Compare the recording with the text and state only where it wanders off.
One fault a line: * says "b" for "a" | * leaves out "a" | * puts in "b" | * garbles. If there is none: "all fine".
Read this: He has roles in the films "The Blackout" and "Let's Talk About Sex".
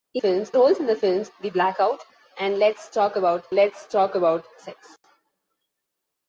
* says "films" for "has"
* puts in "let's Talk About"